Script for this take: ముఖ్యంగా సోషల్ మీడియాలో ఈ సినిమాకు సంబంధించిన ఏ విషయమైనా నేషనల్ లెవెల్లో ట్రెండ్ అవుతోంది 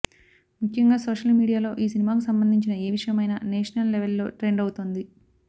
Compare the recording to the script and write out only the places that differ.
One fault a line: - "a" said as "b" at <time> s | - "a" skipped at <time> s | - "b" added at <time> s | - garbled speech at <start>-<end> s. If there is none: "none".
none